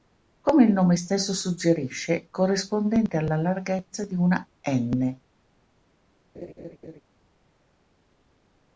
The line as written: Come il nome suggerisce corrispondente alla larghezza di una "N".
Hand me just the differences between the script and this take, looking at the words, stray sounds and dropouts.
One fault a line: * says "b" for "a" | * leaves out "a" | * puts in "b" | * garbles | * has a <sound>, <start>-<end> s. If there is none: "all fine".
* puts in "stesso"
* has a laugh, 6.3-7.0 s